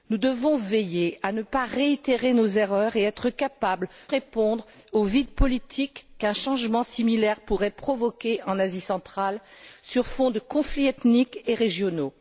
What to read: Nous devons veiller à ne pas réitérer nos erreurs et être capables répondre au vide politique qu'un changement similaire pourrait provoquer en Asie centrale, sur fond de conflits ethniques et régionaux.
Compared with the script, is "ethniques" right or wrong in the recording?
right